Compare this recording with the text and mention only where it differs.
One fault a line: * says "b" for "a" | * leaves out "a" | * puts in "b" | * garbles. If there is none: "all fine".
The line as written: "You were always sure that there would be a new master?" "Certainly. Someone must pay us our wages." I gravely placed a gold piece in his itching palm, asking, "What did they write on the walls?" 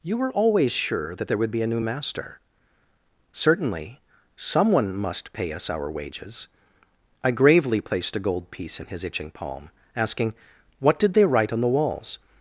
all fine